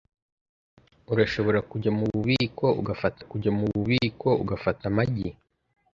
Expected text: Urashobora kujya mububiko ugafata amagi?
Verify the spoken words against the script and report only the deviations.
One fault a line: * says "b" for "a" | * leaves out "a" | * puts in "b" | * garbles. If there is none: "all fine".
* puts in "kujya mububiko ugafata"